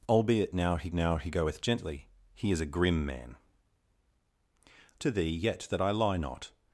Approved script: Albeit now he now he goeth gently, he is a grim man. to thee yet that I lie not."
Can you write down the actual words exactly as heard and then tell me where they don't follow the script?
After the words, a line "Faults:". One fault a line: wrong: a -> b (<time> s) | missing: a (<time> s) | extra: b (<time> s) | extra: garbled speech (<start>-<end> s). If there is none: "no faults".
Albeit now he now he goeth gently, he is a grim man. to thee yet that I lie not."
Faults:
no faults